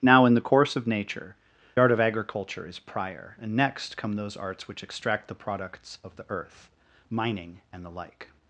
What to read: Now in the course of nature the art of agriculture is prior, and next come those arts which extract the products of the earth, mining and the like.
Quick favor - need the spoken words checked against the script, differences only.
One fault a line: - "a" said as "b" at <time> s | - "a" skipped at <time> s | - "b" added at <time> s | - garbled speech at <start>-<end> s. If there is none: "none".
- "the" skipped at 1.4 s